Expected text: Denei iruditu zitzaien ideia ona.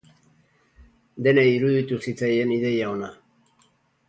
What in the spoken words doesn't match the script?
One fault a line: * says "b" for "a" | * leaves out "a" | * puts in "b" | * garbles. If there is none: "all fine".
all fine